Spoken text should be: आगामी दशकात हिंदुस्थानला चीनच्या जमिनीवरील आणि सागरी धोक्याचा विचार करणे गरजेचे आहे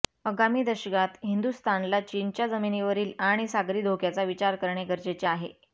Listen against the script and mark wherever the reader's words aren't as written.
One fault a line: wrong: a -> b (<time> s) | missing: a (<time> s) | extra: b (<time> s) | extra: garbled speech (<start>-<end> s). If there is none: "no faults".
no faults